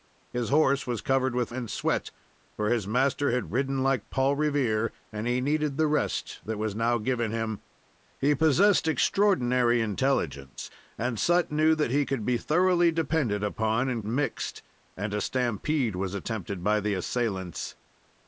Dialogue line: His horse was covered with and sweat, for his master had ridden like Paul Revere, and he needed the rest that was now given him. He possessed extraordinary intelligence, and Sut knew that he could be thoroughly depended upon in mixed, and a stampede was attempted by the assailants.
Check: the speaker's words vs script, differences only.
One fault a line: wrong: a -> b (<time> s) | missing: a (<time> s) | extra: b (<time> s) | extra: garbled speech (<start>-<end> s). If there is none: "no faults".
no faults